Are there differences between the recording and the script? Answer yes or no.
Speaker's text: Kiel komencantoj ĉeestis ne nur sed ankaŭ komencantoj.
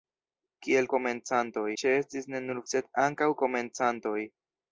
no